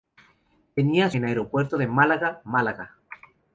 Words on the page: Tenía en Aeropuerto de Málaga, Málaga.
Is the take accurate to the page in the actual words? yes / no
yes